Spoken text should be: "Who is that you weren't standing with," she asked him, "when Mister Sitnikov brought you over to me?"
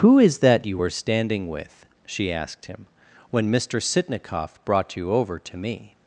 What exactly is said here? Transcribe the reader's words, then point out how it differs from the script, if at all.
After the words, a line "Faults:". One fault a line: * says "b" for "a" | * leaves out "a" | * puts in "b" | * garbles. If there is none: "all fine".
"Who is that you were standing with," she asked him, "when Mister Sitnikov brought you over to me?"
Faults:
* says "were" for "weren't"